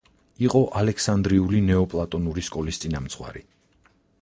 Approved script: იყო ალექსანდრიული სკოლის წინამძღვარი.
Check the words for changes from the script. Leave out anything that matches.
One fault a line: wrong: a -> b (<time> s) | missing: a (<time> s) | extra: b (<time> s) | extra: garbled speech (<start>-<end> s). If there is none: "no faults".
extra: ნეოპლატონური (1.7 s)